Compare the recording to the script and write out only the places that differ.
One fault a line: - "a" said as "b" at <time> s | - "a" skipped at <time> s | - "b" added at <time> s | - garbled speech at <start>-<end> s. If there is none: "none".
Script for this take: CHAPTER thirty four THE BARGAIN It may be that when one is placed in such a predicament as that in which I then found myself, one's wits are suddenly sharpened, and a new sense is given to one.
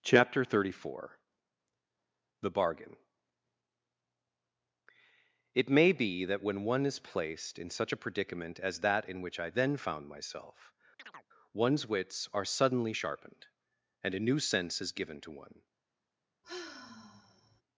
none